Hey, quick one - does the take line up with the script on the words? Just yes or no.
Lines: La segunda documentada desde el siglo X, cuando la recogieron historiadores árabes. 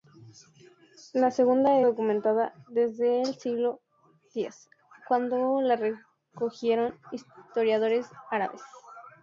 yes